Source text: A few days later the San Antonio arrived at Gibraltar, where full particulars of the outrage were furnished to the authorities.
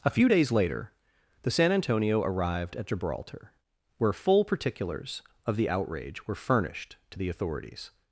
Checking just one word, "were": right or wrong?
right